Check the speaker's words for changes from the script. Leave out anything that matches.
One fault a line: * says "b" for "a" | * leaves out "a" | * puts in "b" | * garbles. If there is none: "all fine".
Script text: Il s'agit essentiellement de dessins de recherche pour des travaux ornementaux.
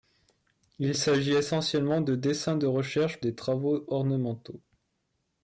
* leaves out "pour"